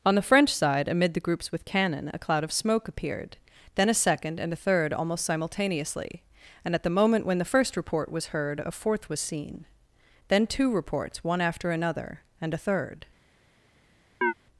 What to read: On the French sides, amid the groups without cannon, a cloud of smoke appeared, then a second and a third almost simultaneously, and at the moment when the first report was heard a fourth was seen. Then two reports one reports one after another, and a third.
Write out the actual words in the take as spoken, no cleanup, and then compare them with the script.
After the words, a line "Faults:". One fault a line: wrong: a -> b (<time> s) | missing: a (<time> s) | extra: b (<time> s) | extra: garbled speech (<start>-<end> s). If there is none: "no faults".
On the French side, amid the groups with cannon, a cloud of smoke appeared, then a second and a third almost simultaneously, and at the moment when the first report was heard a fourth was seen. Then two reports one after another, and a third.
Faults:
wrong: sides -> side (0.5 s)
wrong: without -> with (1.5 s)
missing: reports one (11.4 s)